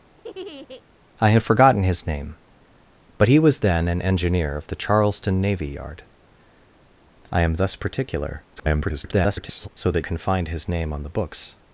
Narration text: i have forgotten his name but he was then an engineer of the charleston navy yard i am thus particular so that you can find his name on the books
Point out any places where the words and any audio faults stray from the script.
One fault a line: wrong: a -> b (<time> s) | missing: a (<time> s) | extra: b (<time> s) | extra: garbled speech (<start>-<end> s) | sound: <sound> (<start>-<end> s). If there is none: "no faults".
sound: laugh (0.2-0.8 s)
extra: garbled speech (8.6-9.7 s)
missing: you (10.0 s)